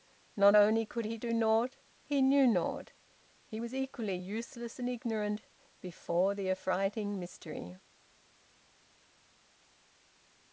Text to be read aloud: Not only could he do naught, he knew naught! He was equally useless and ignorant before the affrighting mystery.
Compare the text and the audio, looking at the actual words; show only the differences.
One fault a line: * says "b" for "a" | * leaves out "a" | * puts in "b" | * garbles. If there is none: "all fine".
all fine